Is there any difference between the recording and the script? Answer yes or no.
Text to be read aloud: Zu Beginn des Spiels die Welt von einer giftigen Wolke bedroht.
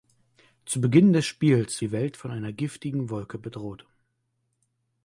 no